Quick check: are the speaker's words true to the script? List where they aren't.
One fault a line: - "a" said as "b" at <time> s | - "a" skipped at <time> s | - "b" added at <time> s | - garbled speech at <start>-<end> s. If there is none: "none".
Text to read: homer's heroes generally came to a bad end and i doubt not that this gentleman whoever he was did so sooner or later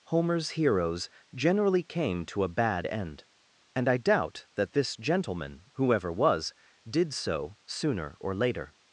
- "not" skipped at 4.5 s
- "he" skipped at 6.1 s